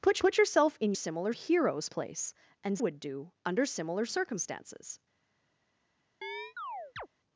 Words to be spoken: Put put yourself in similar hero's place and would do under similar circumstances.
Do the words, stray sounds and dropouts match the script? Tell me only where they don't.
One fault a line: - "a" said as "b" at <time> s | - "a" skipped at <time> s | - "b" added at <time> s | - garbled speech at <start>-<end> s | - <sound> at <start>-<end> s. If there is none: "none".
- chirp at 6.2-7.1 s